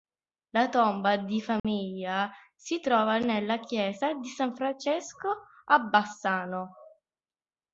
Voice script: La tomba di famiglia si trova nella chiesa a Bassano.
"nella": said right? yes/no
yes